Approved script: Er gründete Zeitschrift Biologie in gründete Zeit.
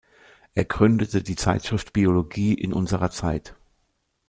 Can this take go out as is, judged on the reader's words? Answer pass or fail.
fail